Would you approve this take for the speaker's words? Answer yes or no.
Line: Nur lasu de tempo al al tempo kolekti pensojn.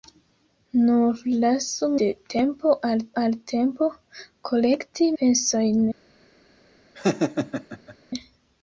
yes